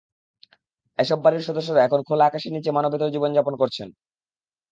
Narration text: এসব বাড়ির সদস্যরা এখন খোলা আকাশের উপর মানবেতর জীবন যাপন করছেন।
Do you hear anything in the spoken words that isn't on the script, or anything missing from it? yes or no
yes